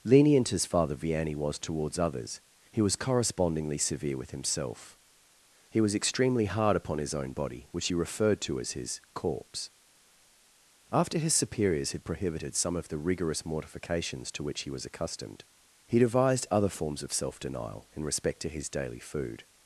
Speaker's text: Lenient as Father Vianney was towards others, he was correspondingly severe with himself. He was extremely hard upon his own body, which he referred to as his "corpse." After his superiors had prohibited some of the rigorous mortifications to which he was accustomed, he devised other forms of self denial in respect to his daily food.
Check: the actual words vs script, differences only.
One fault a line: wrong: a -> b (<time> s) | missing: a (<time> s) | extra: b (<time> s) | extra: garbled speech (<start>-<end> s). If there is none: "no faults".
no faults